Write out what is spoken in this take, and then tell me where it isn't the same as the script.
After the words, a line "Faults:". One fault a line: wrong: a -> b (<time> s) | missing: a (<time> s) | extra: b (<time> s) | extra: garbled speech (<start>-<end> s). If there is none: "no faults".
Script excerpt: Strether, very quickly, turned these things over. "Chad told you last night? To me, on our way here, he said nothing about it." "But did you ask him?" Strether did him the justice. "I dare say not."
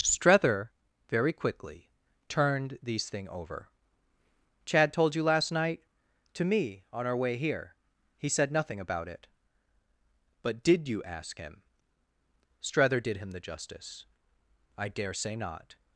Strether, very quickly, turned these thing over. "Chad told you last night? To me, on our way here, he said nothing about it." "But did you ask him?" Strether did him the justice. "I dare say not."
Faults:
wrong: things -> thing (3.1 s)